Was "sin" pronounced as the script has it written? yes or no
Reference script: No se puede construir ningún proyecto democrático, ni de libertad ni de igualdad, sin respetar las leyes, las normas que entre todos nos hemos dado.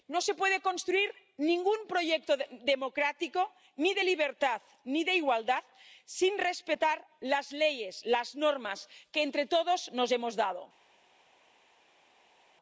yes